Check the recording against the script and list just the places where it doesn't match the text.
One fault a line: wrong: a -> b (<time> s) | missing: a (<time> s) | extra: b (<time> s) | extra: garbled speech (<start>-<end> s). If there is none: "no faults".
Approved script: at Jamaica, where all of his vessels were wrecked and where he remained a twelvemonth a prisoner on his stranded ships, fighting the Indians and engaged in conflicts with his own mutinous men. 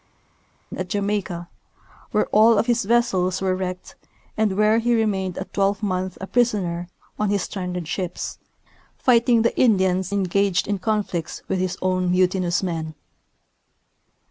missing: and (10.1 s)